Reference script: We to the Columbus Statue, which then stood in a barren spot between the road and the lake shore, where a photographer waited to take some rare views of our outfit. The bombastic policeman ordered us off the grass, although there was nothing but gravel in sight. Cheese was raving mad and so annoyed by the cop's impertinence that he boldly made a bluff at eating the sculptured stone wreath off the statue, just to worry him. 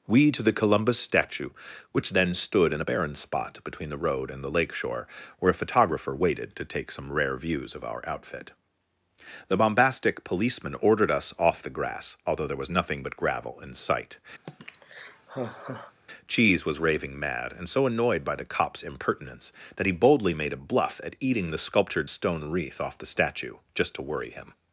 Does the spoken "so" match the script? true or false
true